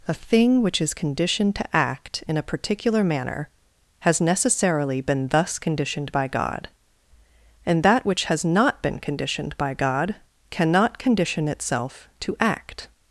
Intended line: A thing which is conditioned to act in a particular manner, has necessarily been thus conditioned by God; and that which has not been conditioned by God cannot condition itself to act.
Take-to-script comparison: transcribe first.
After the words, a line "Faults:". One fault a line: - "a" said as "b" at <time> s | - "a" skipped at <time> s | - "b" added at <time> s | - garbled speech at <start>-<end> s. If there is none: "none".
A thing which is conditioned to act in a particular manner, has necessarily been thus conditioned by God; and that which has not been conditioned by God cannot condition itself to act.
Faults:
none